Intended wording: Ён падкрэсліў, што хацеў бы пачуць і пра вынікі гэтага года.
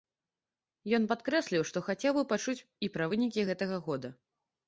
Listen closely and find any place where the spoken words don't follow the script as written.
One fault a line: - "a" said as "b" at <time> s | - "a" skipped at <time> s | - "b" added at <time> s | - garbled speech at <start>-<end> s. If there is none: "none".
none